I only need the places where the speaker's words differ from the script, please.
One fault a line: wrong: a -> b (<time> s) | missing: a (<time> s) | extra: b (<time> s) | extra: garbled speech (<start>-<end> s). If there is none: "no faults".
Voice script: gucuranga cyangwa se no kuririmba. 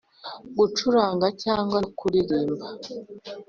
missing: se (1.8 s)